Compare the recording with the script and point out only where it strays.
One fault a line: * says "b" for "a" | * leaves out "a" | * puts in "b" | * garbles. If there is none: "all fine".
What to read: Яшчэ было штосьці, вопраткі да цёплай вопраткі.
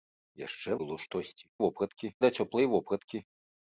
all fine